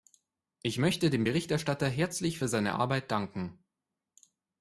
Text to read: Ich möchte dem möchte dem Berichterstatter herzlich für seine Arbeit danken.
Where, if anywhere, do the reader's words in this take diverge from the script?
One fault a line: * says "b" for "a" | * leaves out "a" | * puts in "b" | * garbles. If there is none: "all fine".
* leaves out "möchte dem"